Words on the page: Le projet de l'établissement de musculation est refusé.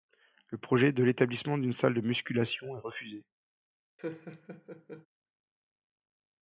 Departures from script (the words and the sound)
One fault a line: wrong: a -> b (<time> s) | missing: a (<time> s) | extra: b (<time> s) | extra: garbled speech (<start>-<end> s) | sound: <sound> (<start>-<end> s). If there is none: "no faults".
extra: d'une salle (1.6 s)
sound: laugh (4.0-5.1 s)